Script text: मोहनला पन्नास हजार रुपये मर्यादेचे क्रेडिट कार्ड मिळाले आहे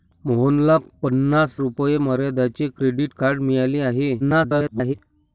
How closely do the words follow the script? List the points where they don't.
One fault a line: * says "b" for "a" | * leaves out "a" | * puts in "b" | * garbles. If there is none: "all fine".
* leaves out "हजार"
* garbles